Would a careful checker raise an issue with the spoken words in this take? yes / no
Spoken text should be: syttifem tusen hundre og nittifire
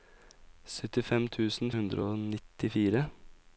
no